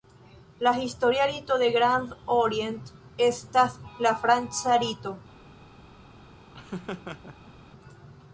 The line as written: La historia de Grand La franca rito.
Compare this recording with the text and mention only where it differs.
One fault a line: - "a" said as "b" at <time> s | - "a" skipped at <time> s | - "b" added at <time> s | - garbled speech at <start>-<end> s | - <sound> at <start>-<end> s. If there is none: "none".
- "rito" added at 1.3 s
- "Orient estas" added at 2.2 s
- laugh at 6.5-7.5 s